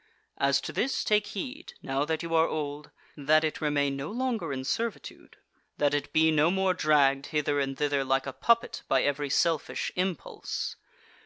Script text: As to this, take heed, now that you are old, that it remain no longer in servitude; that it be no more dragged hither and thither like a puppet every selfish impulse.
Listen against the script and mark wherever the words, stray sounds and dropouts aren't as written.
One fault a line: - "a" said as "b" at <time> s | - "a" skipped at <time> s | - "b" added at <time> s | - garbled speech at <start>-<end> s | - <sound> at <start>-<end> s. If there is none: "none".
- "by" added at 8.9 s